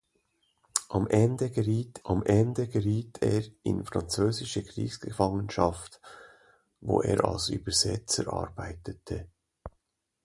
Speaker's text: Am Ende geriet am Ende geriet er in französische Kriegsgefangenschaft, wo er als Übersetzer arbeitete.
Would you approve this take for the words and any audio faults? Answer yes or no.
yes